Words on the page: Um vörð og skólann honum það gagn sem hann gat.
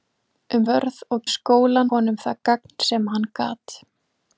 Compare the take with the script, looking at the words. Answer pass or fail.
pass